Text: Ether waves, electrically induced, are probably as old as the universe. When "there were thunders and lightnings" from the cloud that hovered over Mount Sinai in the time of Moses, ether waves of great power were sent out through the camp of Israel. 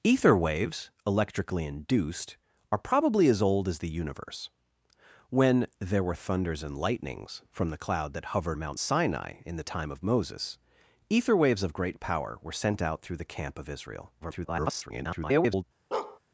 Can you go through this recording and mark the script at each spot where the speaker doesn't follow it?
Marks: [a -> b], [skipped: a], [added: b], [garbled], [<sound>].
Ether waves, electrically induced, are probably as old as the universe. When "there were thunders and lightnings" from the cloud that hovered [skipped: over] Mount Sinai in the time of Moses, ether waves of great power were sent out through the camp of Israel. [garbled] [bark]